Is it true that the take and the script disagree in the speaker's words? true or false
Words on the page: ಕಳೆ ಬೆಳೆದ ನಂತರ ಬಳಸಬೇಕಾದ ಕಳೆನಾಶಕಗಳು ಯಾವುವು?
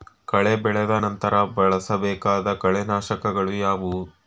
false